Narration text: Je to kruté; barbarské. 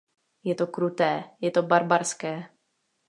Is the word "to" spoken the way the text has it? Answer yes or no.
yes